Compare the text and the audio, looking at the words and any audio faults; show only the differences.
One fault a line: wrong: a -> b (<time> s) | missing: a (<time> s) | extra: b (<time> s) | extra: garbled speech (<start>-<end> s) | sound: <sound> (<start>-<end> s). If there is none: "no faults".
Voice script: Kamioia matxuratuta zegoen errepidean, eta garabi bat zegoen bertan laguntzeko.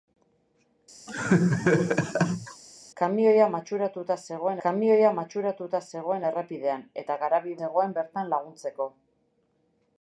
sound: laugh (1.1-2.6 s)
extra: kamioia matxuratuta zegoen (4.6 s)
missing: bat (7.6 s)